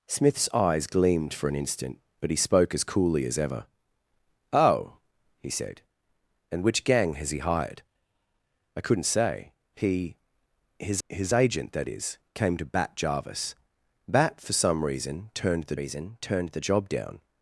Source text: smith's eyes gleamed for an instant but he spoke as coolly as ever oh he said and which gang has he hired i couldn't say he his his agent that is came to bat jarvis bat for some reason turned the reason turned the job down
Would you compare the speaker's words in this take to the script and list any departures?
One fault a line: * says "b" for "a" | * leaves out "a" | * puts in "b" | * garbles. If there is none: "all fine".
all fine